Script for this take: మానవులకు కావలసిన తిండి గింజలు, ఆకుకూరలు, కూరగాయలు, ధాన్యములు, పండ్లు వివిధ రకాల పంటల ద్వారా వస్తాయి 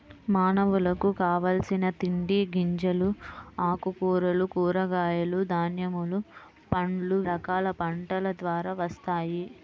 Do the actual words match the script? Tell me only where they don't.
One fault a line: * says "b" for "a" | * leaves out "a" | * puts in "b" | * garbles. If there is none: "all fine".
* leaves out "వివిధ"